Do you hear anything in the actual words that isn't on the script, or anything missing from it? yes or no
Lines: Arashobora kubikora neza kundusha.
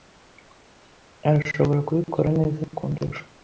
no